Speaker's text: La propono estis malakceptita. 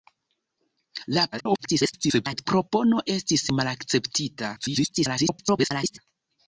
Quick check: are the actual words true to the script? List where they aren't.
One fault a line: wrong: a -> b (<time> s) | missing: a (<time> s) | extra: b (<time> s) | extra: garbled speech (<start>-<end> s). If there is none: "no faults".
extra: garbled speech (1.3-2.5 s)
extra: garbled speech (4.6-6.0 s)